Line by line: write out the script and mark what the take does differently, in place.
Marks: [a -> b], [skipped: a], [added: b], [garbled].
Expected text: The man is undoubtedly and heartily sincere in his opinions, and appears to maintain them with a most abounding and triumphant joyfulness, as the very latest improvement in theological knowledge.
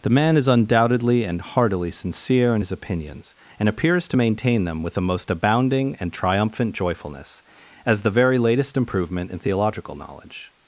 The man is undoubtedly and heartily sincere in his opinions, and appears to maintain them with [a -> the] most abounding and triumphant joyfulness, as the very latest improvement in theological knowledge.